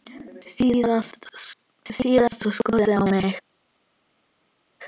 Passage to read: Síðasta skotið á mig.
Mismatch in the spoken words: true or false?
false